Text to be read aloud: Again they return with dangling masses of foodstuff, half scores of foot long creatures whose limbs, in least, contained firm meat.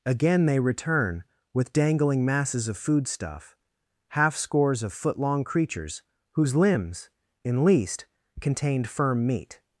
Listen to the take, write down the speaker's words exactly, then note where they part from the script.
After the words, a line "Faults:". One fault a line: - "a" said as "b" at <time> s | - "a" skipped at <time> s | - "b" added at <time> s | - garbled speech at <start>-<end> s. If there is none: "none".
Again they return with dangling masses of foodstuff, half scores of foot long creatures whose limbs, in least, contained firm meat.
Faults:
none